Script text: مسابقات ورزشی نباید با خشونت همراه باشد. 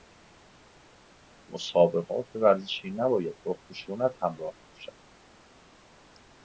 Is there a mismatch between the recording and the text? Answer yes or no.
no